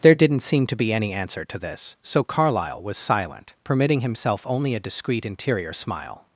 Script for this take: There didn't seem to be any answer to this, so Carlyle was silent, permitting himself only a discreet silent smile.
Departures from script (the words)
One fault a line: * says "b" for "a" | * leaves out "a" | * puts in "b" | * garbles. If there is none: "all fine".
* says "interior" for "silent"